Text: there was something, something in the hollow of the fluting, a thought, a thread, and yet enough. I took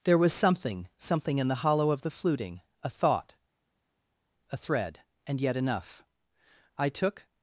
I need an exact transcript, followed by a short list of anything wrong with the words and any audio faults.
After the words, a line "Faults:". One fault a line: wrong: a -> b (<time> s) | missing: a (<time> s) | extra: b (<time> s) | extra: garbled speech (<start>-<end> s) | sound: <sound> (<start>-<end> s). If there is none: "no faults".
there was something, something in the hollow of the fluting, a thought, a thread, and yet enough. I took
Faults:
no faults